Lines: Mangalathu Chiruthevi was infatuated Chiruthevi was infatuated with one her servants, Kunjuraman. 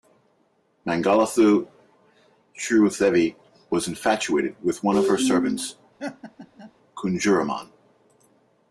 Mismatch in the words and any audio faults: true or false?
true